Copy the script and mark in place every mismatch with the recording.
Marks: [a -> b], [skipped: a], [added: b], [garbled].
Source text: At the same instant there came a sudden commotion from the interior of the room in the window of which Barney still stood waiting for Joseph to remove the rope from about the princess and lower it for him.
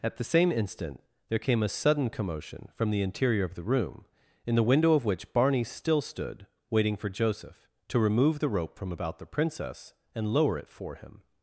At the same instant there came a sudden commotion from the interior of the room in the window of which Barney still stood waiting for Joseph to remove the rope from about the princess and lower it for him.